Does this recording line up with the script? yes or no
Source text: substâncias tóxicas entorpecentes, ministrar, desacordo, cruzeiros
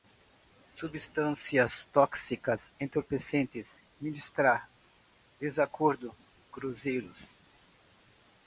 yes